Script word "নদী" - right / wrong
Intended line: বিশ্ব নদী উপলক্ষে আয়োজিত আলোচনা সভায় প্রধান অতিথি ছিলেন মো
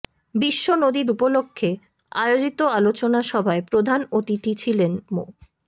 right